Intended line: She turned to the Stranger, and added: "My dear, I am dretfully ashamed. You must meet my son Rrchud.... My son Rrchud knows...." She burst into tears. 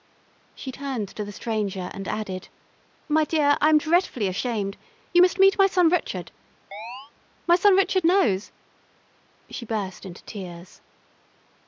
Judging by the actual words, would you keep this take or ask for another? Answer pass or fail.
pass